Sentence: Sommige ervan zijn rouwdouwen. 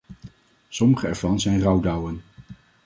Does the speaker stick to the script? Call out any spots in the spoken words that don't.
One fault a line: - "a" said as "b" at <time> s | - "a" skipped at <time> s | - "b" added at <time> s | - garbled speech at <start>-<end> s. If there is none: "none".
none